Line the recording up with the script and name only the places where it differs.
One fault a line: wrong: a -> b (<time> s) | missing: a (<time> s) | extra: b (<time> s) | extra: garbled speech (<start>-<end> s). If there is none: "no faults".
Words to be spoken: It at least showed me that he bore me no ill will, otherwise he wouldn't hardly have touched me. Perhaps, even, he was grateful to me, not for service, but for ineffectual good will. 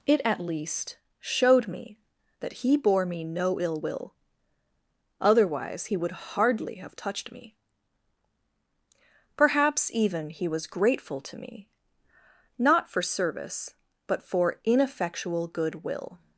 wrong: wouldn't -> would (6.0 s)